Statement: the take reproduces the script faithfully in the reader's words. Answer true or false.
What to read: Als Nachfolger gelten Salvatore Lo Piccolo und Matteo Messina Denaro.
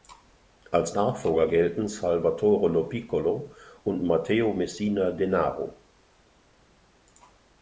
true